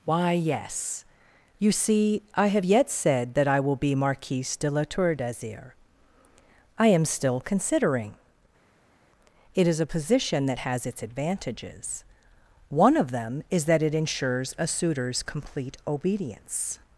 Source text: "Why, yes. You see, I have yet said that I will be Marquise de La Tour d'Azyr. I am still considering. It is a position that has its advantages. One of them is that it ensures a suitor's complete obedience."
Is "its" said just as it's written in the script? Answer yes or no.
yes